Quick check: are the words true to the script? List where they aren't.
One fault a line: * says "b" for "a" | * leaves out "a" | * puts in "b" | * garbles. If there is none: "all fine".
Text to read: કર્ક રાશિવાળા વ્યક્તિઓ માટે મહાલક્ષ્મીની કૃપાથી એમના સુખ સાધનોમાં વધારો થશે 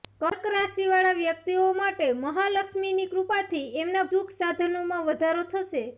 all fine